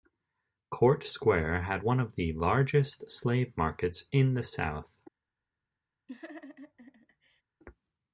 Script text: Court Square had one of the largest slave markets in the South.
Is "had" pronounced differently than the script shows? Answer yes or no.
no